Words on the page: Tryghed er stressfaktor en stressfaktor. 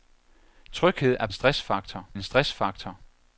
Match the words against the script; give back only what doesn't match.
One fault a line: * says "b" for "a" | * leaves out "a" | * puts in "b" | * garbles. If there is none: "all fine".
all fine